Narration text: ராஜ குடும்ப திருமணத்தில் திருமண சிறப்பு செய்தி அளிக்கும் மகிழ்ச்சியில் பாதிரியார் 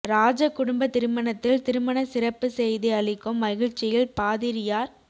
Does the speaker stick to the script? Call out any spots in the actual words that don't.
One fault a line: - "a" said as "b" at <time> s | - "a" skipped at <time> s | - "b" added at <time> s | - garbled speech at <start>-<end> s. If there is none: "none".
none